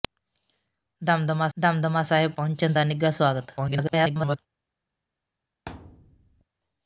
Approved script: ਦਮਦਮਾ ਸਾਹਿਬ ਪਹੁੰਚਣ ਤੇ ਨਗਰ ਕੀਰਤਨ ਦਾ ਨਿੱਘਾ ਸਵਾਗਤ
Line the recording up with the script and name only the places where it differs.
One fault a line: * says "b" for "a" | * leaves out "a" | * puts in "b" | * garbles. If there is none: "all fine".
* puts in "ਦਮਦਮਾ"
* leaves out "ਤੇ ਨਗਰ ਕੀਰਤਨ"
* garbles